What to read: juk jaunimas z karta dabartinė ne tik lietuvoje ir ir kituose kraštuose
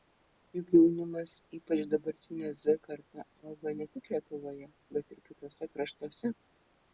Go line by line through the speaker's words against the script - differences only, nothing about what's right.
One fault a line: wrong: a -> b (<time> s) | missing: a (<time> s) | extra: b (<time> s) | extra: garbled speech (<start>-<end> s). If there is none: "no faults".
extra: ypač dabartinė (1.6 s)
wrong: dabartinė -> auga (3.5 s)
wrong: ir -> bet (5.0 s)